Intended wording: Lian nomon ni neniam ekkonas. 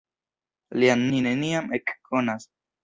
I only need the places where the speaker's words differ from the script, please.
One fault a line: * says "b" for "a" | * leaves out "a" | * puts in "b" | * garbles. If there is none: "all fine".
* leaves out "nomon"